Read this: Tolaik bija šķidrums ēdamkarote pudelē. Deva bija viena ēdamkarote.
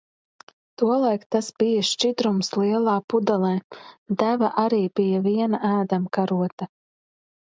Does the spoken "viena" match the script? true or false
true